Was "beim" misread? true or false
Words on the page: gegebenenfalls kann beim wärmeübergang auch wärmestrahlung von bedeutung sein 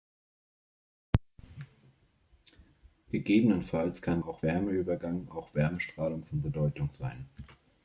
true